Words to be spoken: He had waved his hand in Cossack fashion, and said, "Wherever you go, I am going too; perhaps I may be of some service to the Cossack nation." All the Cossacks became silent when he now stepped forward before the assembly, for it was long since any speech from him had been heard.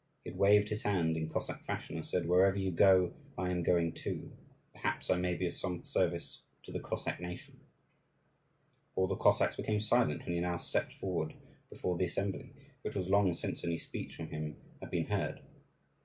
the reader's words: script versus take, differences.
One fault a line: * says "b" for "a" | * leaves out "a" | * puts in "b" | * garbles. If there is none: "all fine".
all fine